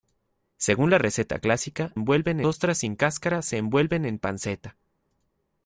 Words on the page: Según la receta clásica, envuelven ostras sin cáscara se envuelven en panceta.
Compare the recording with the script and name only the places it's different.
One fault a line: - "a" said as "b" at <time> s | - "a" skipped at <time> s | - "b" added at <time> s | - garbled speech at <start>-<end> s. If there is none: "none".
none